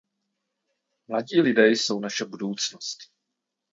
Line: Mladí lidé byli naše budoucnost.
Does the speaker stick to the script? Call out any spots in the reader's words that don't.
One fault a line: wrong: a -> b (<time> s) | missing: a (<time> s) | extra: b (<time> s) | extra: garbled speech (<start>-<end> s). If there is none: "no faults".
wrong: byli -> jsou (1.7 s)